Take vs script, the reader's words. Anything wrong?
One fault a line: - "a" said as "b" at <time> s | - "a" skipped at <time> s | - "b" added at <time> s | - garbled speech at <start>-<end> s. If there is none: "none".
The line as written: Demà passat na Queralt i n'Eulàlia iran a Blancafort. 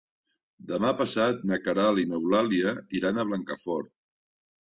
none